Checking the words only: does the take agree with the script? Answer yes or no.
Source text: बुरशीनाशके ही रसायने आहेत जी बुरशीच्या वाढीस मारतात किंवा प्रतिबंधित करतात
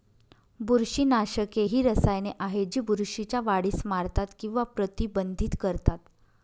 yes